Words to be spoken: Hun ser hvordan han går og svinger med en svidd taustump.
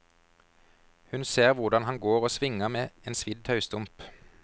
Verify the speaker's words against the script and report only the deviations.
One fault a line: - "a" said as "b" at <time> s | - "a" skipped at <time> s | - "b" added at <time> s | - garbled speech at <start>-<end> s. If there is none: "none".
none